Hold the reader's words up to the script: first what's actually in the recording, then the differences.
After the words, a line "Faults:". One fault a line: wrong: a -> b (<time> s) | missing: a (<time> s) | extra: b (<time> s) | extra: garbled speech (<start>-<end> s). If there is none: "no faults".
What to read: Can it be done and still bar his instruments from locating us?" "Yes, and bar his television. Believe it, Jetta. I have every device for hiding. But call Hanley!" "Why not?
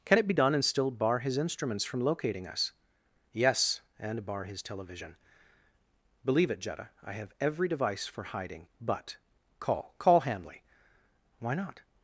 Can it be done and still bar his instruments from locating us?" "Yes, and bar his television. Believe it, Jetta. I have every device for hiding. But call call Hanley!" "Why not?
Faults:
extra: call (10.0 s)